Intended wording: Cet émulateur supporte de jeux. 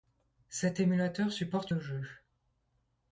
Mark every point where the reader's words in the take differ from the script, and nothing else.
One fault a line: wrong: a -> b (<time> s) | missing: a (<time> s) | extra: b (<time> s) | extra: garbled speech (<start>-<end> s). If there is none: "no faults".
no faults